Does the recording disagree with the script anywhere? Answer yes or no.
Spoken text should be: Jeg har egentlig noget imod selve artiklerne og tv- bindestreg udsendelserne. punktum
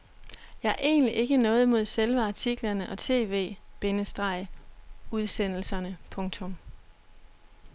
yes